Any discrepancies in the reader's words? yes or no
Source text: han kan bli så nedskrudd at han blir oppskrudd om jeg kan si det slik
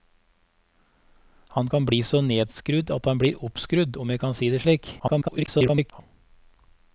yes